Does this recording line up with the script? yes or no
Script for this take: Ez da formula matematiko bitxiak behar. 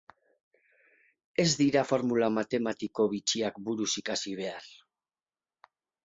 no